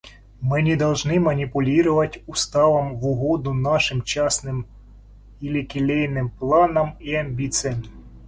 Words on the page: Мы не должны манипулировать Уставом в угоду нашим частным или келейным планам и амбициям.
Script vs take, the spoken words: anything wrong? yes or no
no